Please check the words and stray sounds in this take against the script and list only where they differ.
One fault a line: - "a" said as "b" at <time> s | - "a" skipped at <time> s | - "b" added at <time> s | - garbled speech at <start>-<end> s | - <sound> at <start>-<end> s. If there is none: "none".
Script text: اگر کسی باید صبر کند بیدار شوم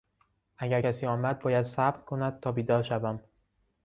- "آمد" added at 1.1 s
- "تا" added at 2.4 s